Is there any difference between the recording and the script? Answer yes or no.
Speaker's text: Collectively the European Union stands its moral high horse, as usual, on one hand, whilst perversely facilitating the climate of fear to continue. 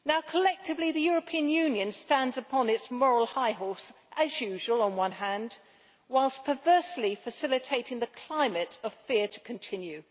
yes